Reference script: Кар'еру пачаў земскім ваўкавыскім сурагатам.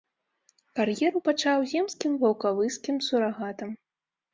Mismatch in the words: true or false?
false